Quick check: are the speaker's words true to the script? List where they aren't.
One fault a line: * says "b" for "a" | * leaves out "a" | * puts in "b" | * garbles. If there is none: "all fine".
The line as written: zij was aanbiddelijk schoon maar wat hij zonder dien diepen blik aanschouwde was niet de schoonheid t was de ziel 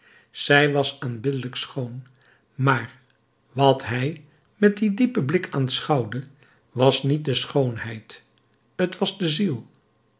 * says "met" for "zonder"